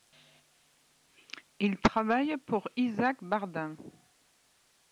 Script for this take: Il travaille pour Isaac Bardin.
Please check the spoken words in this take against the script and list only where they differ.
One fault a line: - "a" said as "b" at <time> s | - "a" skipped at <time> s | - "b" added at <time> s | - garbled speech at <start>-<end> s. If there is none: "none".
none